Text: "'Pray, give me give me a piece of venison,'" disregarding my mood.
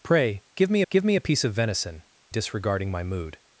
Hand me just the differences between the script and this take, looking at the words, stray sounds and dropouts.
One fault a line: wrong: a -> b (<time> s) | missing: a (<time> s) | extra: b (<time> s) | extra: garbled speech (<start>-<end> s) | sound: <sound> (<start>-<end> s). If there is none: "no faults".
no faults